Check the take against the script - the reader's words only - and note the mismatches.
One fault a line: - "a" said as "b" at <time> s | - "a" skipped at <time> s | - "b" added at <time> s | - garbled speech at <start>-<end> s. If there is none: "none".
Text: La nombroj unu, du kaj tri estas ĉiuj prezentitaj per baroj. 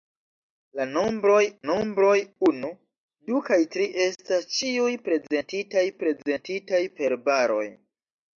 - "nombroj" added at 1.7 s
- "prezentitaj" added at 6.0 s